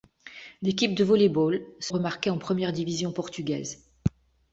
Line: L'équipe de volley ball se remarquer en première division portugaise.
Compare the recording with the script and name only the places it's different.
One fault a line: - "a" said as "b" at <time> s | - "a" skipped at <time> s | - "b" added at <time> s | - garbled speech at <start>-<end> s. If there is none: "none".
none